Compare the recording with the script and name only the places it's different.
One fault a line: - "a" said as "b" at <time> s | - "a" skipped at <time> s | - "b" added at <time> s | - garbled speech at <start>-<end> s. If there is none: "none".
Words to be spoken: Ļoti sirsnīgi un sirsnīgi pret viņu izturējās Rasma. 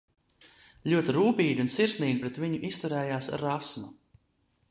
- "sirsnīgi" said as "rūpīgi" at 1.2 s